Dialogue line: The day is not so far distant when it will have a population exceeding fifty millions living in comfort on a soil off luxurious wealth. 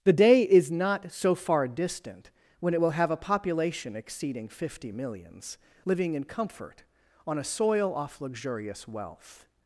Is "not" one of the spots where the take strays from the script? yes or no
no